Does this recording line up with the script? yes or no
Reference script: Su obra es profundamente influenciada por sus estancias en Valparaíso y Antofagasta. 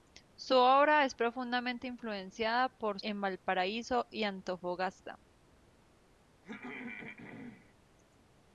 no